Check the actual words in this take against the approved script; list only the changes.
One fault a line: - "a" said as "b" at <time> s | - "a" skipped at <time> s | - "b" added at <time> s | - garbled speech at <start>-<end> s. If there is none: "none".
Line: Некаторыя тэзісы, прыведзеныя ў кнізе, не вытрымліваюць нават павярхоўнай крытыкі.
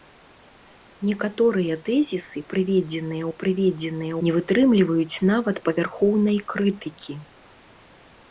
- "кнізе" said as "прыведзеныя" at 3.4 s